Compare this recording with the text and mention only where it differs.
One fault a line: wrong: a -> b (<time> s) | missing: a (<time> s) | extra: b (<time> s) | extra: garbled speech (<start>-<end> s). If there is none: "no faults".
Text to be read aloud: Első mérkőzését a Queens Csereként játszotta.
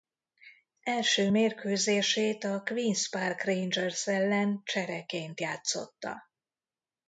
extra: Park Rangers ellen (3.1 s)